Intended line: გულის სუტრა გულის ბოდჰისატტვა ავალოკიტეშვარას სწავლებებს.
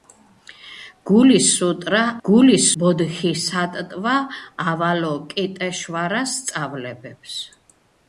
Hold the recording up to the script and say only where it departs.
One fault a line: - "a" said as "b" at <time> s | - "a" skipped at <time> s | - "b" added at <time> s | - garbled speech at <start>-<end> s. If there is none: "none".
none